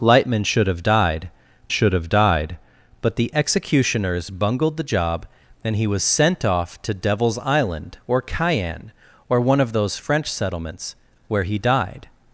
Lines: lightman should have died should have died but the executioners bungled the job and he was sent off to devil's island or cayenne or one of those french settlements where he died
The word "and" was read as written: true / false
true